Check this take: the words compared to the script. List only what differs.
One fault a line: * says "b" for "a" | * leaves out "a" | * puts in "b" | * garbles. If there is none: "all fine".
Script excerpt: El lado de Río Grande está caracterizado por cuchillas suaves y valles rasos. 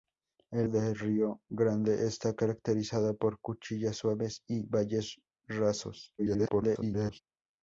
* leaves out "lado"
* garbles